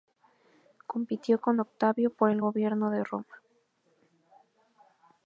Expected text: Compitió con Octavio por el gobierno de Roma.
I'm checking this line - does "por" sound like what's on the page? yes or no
yes